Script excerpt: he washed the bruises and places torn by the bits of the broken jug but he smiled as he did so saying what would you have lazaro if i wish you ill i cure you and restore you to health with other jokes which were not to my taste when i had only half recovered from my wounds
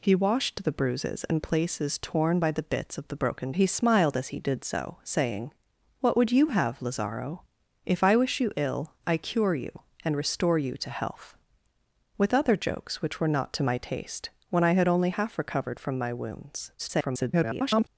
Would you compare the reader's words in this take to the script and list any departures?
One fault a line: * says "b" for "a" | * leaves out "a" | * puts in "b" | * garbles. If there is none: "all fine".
* leaves out "jug but"
* garbles